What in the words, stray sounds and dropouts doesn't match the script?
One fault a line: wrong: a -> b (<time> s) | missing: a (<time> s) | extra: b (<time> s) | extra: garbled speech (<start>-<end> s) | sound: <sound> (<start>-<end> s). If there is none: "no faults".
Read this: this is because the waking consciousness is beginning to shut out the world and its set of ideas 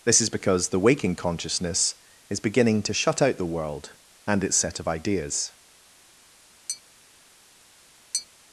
sound: tap (6.7-6.8 s)
sound: tap (8.1-8.3 s)